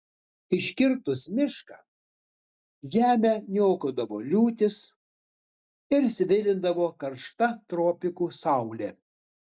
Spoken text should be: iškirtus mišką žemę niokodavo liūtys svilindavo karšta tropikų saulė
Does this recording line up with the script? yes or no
no